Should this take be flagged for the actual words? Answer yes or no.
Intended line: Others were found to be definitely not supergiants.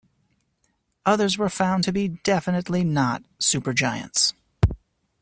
no